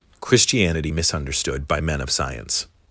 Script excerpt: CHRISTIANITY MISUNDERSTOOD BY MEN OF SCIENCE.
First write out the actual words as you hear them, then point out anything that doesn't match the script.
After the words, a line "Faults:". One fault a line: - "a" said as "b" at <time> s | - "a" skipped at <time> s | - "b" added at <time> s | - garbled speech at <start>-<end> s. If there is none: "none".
CHRISTIANITY MISUNDERSTOOD BY MEN OF SCIENCE.
Faults:
none